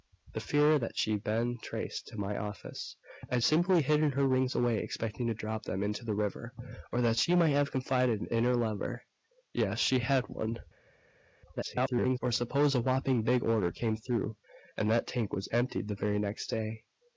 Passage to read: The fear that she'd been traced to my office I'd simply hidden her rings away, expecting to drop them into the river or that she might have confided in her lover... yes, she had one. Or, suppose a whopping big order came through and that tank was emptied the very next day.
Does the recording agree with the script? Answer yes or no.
no